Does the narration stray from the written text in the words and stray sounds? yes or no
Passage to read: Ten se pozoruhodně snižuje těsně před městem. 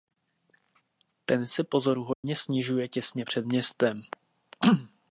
yes